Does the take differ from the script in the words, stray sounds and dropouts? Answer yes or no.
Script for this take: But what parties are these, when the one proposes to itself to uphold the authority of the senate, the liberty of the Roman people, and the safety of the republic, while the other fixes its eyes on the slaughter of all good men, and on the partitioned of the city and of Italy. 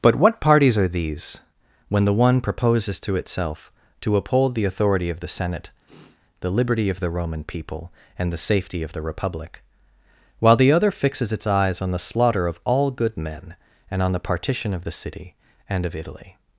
yes